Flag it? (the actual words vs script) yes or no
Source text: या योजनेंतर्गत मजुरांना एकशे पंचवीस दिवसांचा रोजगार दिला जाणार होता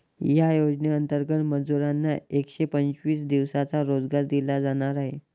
yes